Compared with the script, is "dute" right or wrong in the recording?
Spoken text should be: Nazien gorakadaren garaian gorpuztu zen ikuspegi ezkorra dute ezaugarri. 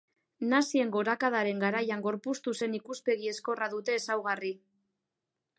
right